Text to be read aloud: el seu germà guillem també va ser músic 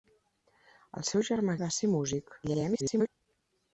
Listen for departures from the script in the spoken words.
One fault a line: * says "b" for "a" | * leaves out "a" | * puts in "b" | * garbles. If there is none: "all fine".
* leaves out "guillem també"
* garbles